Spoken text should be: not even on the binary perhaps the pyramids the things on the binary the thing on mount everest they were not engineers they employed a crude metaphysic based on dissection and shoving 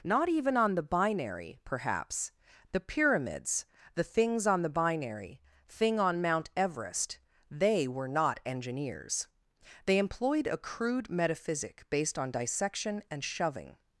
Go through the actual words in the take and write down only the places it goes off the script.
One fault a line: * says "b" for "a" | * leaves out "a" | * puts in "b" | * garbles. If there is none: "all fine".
* leaves out "the"